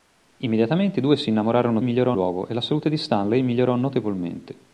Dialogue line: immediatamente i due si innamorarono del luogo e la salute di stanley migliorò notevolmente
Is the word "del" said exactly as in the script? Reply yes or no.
no